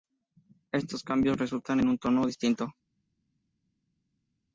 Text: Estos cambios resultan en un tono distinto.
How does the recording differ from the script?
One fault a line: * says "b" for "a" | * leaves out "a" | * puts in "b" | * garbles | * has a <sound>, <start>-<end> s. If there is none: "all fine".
all fine